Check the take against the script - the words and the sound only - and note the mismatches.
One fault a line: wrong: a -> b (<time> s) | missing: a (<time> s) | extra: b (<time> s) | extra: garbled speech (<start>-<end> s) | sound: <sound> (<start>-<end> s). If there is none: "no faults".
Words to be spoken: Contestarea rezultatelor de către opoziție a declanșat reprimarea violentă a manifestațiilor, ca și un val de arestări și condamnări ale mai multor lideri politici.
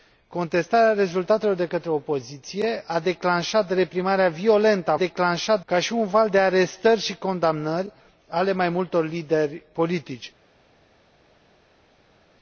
wrong: manifestațiilor -> declanșat (4.9 s)